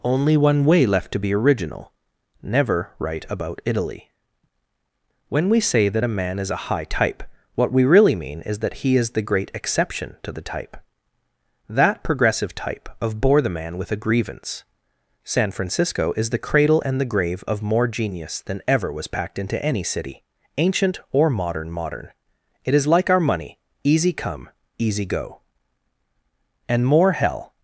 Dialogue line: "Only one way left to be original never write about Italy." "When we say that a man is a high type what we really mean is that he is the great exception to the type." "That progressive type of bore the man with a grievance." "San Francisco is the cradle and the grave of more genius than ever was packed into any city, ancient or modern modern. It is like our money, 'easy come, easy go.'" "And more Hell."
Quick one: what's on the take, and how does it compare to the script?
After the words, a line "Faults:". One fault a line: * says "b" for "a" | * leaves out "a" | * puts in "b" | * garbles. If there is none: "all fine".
"Only one way left to be original never write about Italy." "When we say that a man is a high type what we really mean is that he is the great exception to the type." "That progressive type of bore the man with a grievance." "San Francisco is the cradle and the grave of more genius than ever was packed into any city, ancient or modern modern. It is like our money, 'easy come, easy go.'" "And more Hell."
Faults:
all fine